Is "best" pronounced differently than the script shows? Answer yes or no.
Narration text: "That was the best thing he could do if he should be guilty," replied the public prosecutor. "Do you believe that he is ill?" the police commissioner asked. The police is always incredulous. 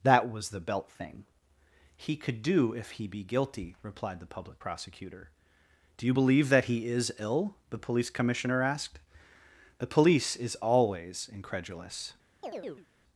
yes